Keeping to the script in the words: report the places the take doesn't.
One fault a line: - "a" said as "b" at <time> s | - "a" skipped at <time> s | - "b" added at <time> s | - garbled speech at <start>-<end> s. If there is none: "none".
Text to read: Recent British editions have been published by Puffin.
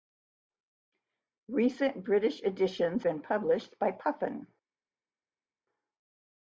- "have" skipped at 3.0 s